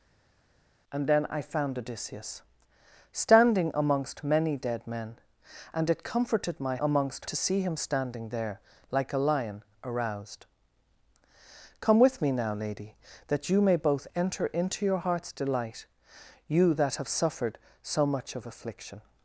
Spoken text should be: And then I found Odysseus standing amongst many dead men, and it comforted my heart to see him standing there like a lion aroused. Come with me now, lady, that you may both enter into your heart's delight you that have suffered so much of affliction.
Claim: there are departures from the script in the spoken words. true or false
true